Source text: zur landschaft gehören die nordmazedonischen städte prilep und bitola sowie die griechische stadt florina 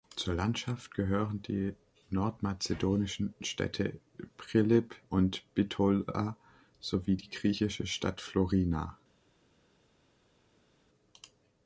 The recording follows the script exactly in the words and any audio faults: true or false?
true